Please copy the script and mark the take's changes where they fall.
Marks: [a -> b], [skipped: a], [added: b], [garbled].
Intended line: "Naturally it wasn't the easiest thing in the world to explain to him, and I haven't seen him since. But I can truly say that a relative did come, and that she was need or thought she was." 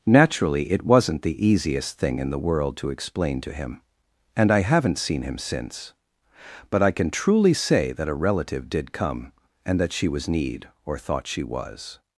"Naturally it wasn't the easiest thing in the world to explain to him, and I haven't seen him since. But I can truly say that a relative did come, and that she was need or thought she was."